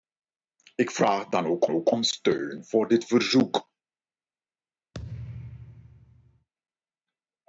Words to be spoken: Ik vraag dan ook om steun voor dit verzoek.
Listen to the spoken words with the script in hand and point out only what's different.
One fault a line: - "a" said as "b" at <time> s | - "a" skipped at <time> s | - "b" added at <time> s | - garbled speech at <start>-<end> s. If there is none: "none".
- "ook" added at 1.7 s